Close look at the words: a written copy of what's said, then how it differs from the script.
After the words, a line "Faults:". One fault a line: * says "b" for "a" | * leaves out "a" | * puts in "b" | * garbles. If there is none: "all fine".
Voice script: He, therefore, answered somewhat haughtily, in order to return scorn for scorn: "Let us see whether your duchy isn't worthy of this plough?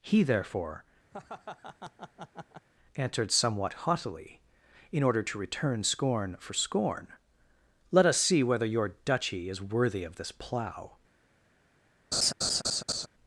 He, therefore, answered somewhat haughtily, in order to return scorn for scorn: "Let us see whether your duchy is worthy of this plough?
Faults:
* says "is" for "isn't"